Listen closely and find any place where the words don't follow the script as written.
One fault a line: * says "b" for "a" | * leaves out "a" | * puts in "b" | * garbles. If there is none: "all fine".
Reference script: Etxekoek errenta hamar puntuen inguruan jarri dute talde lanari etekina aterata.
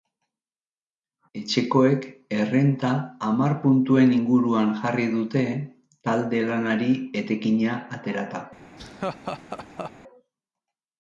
all fine